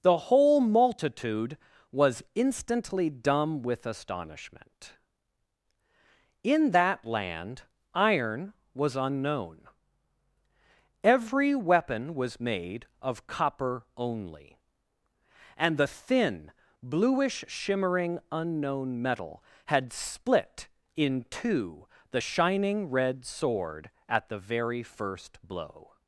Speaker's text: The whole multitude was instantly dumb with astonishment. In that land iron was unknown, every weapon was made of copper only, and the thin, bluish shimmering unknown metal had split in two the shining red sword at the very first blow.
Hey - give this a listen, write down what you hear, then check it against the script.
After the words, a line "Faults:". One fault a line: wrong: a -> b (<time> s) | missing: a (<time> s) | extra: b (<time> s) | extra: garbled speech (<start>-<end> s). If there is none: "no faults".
The whole multitude was instantly dumb with astonishment. In that land iron was unknown, every weapon was made of copper only, and the thin, bluish shimmering unknown metal had split in two the shining red sword at the very first blow.
Faults:
no faults